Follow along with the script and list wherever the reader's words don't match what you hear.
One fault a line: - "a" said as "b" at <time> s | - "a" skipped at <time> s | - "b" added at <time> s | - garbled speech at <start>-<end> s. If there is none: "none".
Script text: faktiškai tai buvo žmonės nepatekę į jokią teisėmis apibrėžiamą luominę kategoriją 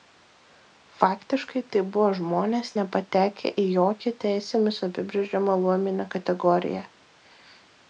none